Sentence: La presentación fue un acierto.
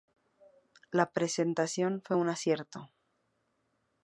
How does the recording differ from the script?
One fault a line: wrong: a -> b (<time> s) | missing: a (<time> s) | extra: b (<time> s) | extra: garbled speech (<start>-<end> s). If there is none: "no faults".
no faults